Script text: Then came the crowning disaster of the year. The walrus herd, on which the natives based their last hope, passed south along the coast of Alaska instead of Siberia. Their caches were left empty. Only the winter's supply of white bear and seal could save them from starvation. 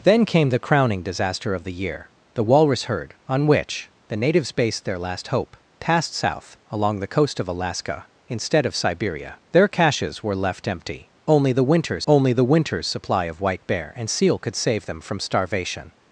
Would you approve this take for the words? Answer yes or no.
no